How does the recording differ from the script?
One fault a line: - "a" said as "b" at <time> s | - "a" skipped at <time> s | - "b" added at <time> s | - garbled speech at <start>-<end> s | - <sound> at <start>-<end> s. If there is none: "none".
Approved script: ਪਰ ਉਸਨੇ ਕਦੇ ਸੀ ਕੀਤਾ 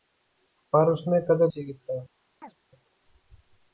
- chirp at 2.4-2.6 s